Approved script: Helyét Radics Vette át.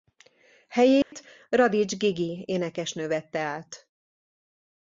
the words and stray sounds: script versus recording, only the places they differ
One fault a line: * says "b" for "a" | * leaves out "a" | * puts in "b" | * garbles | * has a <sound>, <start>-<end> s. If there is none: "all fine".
* has a dropout, 1.0-1.1 s
* puts in "Gigi énekesnő"